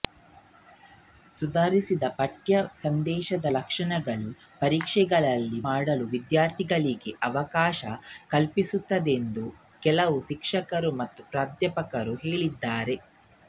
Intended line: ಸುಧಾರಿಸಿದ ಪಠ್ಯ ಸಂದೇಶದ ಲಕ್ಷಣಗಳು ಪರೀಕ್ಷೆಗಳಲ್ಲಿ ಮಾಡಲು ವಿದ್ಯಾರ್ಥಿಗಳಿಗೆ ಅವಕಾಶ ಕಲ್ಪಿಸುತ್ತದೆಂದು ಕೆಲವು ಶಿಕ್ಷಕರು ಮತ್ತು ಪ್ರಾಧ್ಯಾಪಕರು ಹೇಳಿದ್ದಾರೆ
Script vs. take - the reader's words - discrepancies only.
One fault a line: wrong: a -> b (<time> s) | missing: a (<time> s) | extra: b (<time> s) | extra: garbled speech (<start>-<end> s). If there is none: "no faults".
no faults